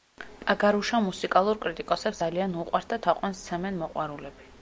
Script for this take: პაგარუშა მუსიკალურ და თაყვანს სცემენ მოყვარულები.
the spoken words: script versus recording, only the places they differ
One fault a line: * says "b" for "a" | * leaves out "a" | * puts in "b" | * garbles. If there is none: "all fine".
* puts in "კრიტიკოსებს ძალიან უყვართ"